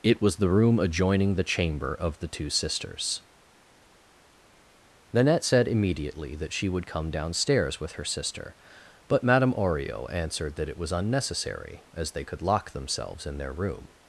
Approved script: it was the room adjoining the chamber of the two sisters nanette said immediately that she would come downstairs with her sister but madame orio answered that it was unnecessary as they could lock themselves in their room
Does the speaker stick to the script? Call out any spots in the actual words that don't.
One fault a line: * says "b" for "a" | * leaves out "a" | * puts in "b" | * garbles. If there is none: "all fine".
all fine